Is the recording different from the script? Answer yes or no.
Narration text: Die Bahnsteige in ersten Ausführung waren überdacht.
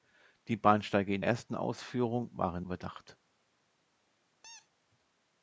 no